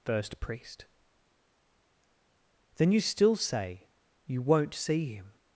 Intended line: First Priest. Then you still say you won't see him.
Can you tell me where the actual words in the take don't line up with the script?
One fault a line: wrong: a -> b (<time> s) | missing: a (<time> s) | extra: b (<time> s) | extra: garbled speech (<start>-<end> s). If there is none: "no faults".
no faults